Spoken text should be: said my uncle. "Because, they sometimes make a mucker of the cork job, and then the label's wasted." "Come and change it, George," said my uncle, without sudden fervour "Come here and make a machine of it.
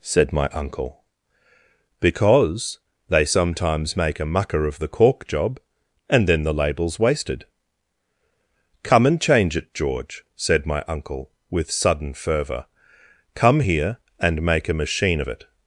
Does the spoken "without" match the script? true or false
false